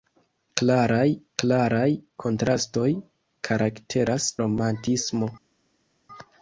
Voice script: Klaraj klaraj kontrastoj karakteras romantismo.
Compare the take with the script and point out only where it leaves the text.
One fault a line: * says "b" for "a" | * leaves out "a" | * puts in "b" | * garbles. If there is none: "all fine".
all fine